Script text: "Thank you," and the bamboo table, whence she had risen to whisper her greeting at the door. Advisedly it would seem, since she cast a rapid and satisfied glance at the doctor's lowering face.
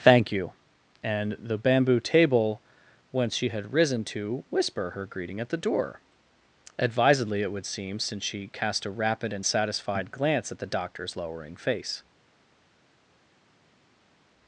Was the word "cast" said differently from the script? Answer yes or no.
no